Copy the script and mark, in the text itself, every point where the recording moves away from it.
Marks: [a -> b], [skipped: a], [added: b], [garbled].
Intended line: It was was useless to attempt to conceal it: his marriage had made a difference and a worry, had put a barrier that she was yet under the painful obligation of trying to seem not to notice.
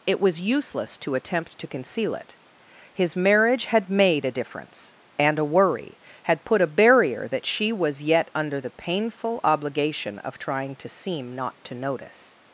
It was [skipped: was] useless to attempt to conceal it: his marriage had made a difference and a worry, had put a barrier that she was yet under the painful obligation of trying to seem not to notice.